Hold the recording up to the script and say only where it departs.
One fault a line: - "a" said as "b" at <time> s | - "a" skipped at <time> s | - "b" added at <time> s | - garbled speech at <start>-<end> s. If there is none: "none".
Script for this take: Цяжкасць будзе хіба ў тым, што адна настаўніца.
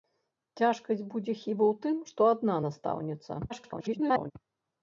- garbled speech at 3.5-4.3 s